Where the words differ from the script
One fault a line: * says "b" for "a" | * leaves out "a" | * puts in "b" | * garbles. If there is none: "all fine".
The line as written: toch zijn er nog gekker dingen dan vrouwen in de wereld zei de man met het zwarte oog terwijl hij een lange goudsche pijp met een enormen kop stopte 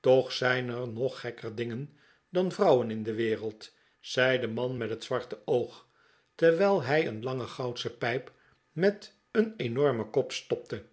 all fine